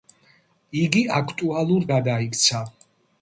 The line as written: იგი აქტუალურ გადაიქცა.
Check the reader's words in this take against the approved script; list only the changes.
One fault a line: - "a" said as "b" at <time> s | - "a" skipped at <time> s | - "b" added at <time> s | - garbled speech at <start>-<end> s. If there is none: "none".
none